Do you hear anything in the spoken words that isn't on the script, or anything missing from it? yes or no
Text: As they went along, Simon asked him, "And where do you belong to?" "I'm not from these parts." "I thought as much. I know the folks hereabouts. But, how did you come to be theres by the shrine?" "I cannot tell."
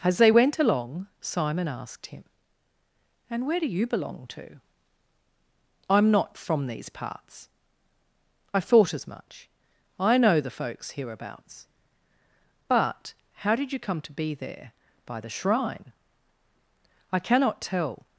yes